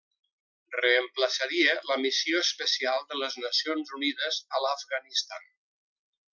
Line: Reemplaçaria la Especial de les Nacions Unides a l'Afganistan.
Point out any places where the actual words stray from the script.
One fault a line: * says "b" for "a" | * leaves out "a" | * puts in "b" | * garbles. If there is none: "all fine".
* puts in "Missió"